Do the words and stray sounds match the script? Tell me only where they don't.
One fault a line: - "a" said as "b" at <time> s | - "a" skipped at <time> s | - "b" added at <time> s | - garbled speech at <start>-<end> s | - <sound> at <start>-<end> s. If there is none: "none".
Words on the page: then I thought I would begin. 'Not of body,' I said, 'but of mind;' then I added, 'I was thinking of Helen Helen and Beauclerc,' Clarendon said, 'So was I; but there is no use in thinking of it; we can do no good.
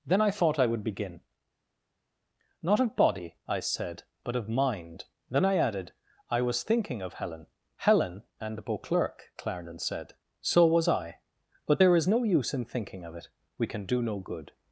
none